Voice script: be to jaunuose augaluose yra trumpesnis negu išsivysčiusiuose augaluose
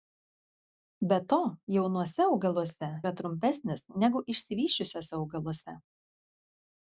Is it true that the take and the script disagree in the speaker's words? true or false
false